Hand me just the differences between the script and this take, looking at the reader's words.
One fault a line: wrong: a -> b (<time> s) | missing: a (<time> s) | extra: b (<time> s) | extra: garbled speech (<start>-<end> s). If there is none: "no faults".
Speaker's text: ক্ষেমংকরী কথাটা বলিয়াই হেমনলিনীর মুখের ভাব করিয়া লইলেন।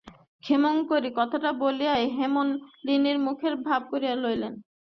no faults